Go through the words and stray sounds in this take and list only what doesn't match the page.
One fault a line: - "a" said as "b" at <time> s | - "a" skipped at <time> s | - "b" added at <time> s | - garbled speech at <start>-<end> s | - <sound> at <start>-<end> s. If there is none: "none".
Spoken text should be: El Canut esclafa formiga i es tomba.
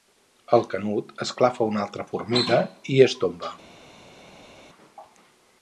- "una altra" added at 1.7 s